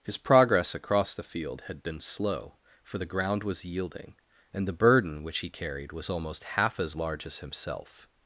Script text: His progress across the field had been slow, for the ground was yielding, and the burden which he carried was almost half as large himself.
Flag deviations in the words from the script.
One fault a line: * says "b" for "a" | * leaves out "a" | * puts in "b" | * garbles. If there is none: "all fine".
* puts in "as"